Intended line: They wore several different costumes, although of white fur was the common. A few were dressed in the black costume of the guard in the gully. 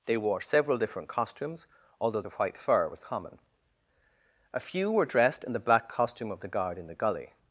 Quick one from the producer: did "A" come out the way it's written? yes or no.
yes